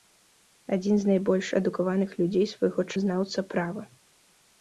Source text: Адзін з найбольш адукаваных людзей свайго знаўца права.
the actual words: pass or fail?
pass